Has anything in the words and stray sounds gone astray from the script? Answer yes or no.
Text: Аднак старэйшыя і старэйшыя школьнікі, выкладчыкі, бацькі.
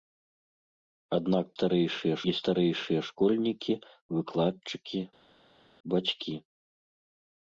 no